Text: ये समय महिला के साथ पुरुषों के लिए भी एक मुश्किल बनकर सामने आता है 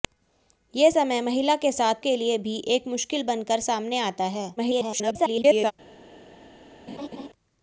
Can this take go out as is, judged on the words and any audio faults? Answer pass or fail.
fail